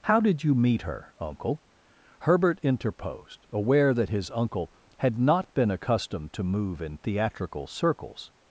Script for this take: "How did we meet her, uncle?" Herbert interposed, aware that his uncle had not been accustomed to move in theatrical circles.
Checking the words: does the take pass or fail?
fail